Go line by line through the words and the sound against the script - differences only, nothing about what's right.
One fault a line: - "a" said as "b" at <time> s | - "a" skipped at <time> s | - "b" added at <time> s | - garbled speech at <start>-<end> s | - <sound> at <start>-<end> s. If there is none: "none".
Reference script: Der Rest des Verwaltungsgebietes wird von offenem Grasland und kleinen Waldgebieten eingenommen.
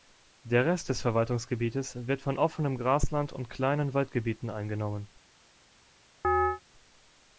- chirp at 6.2-6.6 s